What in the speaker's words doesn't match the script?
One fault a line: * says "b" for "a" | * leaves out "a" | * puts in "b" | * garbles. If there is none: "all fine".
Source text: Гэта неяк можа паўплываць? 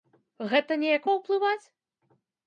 * leaves out "можа"